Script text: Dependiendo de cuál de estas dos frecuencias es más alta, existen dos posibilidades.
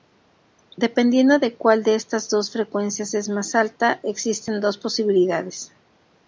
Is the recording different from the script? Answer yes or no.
no